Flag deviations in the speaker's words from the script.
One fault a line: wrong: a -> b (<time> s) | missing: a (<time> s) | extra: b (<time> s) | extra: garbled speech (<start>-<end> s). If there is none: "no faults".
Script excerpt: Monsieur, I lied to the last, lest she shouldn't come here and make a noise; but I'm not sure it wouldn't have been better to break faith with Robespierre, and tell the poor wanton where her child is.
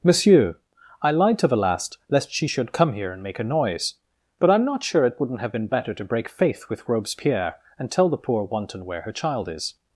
wrong: shouldn't -> should (2.4 s)